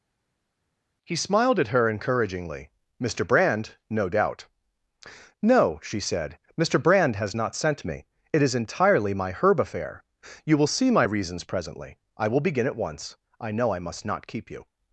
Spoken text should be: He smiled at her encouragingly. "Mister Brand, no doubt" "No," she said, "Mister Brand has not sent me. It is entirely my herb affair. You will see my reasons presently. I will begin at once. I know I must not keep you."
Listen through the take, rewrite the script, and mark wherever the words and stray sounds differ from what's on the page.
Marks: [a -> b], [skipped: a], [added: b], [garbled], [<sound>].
He smiled at her encouragingly. "Mister Brand, no doubt" "No," she said, "Mister Brand has not sent me. It is entirely my herb affair. You will see my reasons presently. I will begin at once. I know I must not keep you."